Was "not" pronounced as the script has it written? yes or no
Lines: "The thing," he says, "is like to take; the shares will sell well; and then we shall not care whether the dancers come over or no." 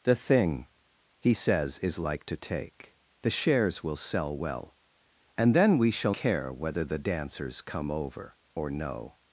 no